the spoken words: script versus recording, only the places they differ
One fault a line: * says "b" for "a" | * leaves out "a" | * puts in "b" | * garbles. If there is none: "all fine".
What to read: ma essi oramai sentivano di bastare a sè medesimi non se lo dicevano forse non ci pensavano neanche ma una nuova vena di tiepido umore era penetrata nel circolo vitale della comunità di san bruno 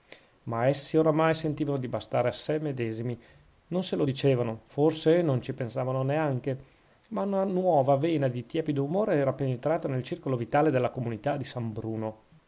all fine